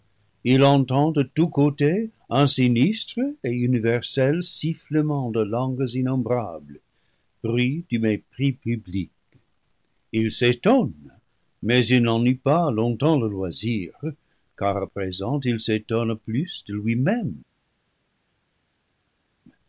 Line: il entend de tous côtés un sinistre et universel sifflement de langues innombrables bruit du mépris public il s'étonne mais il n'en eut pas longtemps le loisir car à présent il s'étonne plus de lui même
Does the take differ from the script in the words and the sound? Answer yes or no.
no